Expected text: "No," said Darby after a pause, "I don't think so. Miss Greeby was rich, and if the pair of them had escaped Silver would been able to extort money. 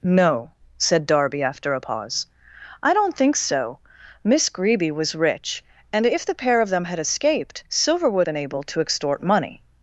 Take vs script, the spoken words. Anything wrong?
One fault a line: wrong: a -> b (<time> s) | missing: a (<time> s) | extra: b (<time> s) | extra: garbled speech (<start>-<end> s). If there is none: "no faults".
no faults